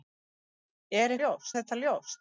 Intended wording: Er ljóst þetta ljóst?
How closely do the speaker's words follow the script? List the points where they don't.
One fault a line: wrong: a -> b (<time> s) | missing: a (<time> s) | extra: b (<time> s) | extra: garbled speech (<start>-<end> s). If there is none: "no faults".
no faults